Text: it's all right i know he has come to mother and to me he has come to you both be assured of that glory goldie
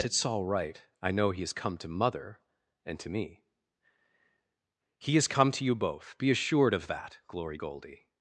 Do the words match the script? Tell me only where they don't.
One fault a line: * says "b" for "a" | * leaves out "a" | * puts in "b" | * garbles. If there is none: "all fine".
all fine